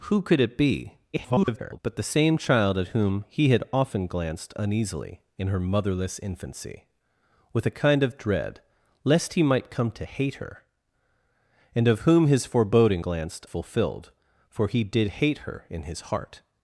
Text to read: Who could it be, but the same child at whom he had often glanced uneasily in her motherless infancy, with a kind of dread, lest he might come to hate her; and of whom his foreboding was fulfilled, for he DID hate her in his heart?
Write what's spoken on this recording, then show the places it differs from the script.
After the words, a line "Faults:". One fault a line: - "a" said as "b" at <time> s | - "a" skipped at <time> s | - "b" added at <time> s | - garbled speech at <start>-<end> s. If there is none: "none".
Who could it be, [garbled] but the same child at whom he had often glanced uneasily in her motherless infancy, with a kind of dread, lest he might come to hate her; and of whom his foreboding glanced fulfilled, for he DID hate her in his heart?
Faults:
- garbled speech at 1.1-1.8 s
- "was" said as "glanced" at 13.0 s